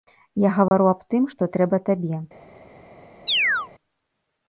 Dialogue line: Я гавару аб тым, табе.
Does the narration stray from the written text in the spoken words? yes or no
yes